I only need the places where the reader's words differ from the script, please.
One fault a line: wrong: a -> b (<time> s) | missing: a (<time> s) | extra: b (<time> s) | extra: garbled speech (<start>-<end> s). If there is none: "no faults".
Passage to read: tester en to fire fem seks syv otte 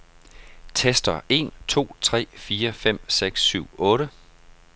extra: tre (2.0 s)